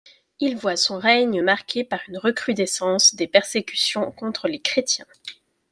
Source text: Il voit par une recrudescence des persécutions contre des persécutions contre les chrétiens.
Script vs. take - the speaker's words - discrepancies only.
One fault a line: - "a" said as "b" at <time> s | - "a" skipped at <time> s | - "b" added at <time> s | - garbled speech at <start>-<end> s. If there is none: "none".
- "son règne marqué" added at 0.8 s
- "des persécutions contre" skipped at 4.5 s